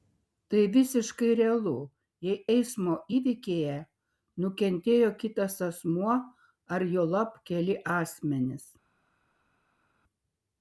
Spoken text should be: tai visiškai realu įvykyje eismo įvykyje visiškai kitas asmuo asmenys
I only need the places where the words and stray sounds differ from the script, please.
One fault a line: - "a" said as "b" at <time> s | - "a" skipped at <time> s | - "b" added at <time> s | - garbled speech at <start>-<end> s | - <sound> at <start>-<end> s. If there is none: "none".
- "įvykyje" said as "jei" at 2.3 s
- "visiškai" said as "nukentėjo" at 4.5 s
- "ar juolab keli" added at 6.8 s